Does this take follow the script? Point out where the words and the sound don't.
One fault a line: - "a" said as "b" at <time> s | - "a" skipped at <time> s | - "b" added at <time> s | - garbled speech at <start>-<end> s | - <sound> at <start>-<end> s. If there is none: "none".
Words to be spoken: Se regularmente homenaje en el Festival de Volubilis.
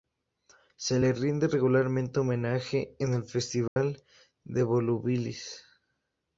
- "le rinde" added at 1.0 s
- dropout at 3.7-3.8 s